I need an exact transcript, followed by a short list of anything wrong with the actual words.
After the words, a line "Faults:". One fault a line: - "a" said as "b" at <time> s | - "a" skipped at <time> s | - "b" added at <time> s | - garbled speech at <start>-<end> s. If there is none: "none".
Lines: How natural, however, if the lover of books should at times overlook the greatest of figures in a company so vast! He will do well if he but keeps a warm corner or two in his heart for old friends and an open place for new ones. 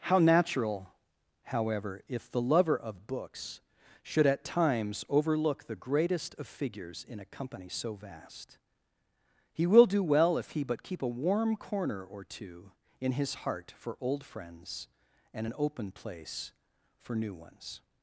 How natural, however, if the lover of books should at times overlook the greatest of figures in a company so vast! He will do well if he but keep a warm corner or two in his heart for old friends and an open place for new ones.
Faults:
- "keeps" said as "keep" at 10.8 s